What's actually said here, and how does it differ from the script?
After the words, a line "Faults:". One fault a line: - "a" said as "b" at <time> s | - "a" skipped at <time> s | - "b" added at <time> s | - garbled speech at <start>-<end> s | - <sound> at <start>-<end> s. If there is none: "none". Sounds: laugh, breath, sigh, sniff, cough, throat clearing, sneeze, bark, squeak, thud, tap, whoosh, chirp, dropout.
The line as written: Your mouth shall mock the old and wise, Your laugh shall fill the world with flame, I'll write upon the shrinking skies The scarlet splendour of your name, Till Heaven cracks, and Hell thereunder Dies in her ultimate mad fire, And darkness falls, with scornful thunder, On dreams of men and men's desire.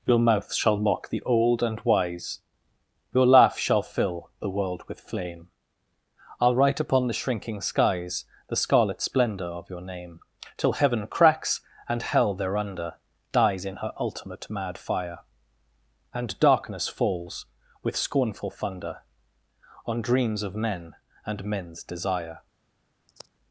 Your mouth shall mock the old and wise, Your laugh shall fill the world with flame, I'll write upon the shrinking skies The scarlet splendour of your name, Till Heaven cracks, and Hell thereunder Dies in her ultimate mad fire, And darkness falls, with scornful thunder, On dreams of men and men's desire.
Faults:
- sigh at 23.1-23.3 s